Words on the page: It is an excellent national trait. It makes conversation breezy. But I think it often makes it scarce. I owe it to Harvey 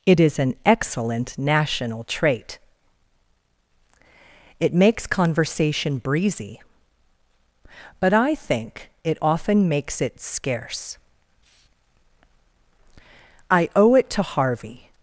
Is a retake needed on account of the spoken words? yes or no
no